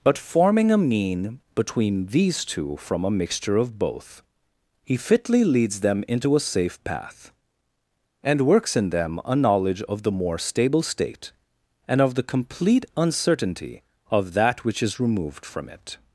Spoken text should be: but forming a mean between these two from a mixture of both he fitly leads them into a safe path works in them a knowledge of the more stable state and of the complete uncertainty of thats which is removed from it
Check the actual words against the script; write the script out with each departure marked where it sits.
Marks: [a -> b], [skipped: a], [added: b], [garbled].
but forming a mean between these two from a mixture of both he fitly leads them into a safe path [added: and] works in them a knowledge of the more stable state and of the complete uncertainty of [thats -> that] which is removed from it